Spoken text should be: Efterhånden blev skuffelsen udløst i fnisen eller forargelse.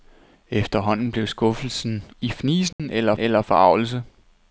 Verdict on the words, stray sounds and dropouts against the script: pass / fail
fail